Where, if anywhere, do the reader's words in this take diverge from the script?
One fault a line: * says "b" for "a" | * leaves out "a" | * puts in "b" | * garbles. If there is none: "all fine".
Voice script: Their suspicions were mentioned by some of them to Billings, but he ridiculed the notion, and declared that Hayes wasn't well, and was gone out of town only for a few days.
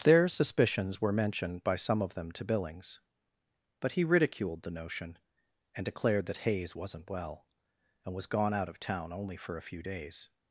all fine